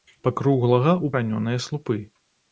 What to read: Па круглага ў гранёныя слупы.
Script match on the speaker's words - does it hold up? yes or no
yes